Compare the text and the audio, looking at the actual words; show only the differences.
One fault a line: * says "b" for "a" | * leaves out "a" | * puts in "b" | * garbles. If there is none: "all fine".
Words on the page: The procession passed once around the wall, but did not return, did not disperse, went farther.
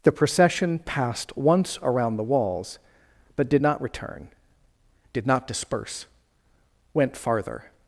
* says "walls" for "wall"